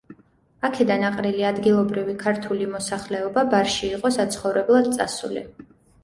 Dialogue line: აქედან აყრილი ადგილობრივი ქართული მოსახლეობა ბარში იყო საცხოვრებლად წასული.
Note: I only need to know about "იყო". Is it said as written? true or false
true